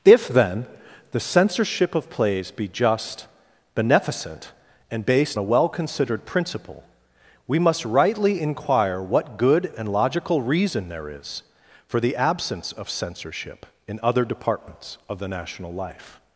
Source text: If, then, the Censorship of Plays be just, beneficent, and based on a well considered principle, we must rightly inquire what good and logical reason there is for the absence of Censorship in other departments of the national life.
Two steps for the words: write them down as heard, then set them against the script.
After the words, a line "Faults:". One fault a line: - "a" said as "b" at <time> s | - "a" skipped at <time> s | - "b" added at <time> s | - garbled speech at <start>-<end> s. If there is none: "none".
If, then, the Censorship of Plays be just, beneficent, and based a well considered principle, we must rightly inquire what good and logical reason there is for the absence of Censorship in other departments of the national life.
Faults:
- "on" skipped at 5.4 s